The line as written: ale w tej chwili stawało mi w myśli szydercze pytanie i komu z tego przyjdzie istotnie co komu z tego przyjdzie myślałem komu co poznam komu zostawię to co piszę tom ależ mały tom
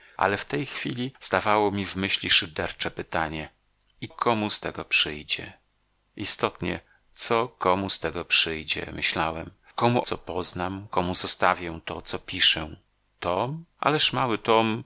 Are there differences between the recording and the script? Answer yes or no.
no